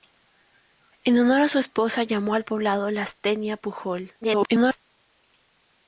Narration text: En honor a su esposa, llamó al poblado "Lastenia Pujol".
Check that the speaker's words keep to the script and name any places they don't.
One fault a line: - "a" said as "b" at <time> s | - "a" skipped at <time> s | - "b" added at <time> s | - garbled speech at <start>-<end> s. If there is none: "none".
- garbled speech at 4.2-4.8 s